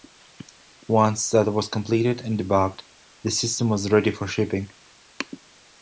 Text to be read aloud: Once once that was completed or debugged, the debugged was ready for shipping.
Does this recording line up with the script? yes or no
no